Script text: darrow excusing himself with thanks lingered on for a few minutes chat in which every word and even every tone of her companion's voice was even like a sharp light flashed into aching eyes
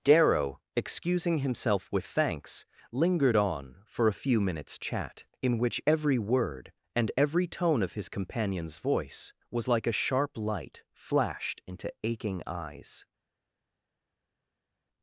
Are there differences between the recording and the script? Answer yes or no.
yes